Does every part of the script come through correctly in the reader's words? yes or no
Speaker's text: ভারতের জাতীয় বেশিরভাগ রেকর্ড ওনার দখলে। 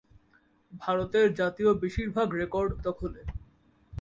no